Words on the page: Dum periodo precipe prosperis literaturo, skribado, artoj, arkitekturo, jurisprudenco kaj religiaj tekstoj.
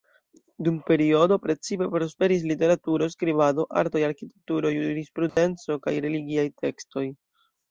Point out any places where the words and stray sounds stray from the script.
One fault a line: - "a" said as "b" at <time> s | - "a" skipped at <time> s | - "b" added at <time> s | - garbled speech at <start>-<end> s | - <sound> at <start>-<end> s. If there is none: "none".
- dropout at 5.3-5.4 s